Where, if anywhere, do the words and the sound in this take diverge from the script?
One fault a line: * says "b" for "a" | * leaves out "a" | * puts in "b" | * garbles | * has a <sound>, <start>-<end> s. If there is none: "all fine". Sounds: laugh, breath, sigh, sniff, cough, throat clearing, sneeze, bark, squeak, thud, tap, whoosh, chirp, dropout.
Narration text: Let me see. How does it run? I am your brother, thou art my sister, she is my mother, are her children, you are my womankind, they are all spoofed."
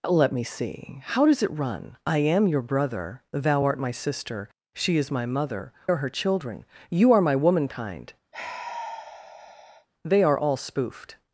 * has a sigh, 8.3-9.9 s